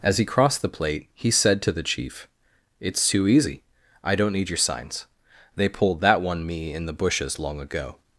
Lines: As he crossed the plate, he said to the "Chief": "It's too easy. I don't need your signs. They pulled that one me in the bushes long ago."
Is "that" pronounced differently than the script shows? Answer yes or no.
no